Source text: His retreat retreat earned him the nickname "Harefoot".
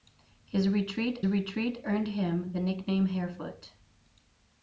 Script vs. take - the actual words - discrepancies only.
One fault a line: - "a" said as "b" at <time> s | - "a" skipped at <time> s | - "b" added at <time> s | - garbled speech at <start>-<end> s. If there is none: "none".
none